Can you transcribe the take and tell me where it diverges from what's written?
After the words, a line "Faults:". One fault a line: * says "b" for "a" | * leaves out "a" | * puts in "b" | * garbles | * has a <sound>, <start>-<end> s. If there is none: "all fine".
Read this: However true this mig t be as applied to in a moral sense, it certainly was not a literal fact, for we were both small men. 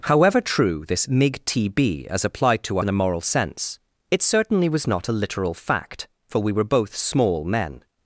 However true this mig t be as applied to in a moral sense, it certainly was not a literal fact, for we were both small men.
Faults:
all fine